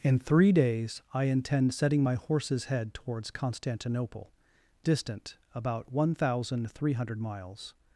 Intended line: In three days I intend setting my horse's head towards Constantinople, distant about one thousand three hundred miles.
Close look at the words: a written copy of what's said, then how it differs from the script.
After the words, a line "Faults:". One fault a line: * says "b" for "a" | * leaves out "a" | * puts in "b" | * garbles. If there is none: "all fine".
In three days I intend setting my horse's head towards Constantinople, distant about one thousand three hundred miles.
Faults:
all fine